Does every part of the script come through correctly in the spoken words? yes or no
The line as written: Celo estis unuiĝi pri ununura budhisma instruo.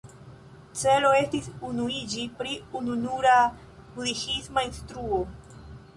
yes